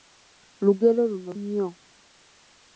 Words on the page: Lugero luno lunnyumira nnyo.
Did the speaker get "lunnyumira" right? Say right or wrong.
wrong